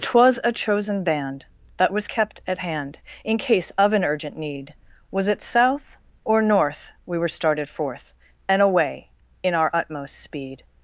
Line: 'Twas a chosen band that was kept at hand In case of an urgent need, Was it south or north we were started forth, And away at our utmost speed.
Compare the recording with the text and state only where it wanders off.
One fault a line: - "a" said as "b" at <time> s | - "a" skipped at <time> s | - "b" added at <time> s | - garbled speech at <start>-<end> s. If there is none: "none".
- "at" said as "in" at 9.4 s